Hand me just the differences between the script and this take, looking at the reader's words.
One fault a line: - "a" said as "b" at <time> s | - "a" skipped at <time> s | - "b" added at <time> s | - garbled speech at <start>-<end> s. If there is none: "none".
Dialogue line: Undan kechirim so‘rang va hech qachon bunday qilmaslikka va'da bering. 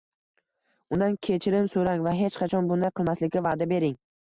none